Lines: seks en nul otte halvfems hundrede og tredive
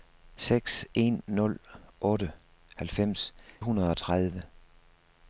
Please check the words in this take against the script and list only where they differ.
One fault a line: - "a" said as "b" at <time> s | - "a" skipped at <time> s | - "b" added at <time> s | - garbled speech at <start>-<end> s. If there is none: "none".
none